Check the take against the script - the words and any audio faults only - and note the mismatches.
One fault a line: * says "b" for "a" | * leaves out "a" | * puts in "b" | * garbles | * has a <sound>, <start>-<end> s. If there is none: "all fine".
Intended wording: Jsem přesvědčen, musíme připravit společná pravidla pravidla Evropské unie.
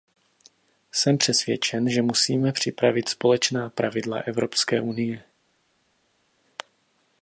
* puts in "že"
* leaves out "pravidla"